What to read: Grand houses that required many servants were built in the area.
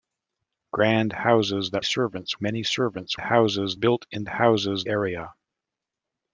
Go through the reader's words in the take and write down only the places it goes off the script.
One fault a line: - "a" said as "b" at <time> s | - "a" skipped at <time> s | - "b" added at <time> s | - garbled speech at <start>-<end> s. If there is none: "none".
- "required" said as "servants" at 1.8 s
- "were" said as "houses" at 3.2 s
- "the" said as "houses" at 4.3 s